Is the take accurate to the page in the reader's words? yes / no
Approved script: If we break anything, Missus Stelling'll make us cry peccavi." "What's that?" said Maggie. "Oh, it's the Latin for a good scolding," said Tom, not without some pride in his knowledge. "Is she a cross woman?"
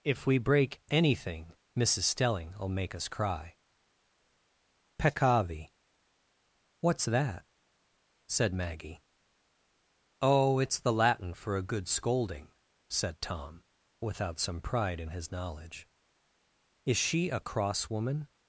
no